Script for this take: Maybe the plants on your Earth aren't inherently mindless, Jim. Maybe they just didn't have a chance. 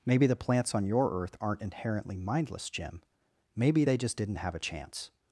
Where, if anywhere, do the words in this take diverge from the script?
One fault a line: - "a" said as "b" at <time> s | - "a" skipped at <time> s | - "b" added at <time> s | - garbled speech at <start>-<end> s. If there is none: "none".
none